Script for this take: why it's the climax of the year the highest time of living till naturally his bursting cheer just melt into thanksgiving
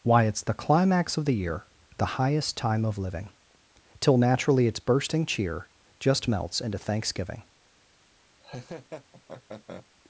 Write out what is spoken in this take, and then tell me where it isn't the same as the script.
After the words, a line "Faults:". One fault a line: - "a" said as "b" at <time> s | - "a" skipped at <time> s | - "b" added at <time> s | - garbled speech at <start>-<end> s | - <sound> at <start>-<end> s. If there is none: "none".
why it's the climax of the year the highest time of living till naturally its bursting cheer just melts into thanksgiving
Faults:
- "his" said as "its" at 4.7 s
- "melt" said as "melts" at 6.2 s
- laugh at 8.4-9.9 s